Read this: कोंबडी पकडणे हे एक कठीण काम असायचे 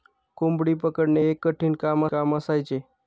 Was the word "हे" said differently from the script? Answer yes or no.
yes